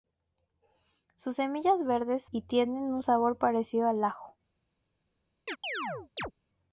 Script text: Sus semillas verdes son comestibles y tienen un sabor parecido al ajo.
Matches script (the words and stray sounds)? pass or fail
fail